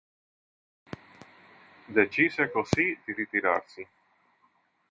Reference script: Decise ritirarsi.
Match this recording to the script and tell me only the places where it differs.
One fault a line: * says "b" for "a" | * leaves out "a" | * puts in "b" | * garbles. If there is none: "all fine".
* puts in "così di"